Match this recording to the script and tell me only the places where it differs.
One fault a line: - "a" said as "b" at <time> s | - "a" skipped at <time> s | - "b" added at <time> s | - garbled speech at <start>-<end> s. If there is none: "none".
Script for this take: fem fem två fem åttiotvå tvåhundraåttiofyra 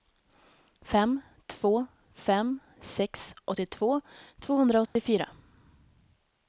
- "fem" skipped at 1.2 s
- "sex" added at 2.8 s